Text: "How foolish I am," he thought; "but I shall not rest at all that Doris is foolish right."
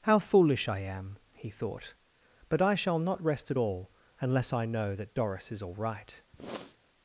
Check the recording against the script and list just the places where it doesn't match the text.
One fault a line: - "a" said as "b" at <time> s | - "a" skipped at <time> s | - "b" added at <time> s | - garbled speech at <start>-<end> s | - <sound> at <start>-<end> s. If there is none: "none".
- "unless I know" added at 4.2 s
- "foolish" said as "all" at 5.6 s
- sniff at 6.3-6.8 s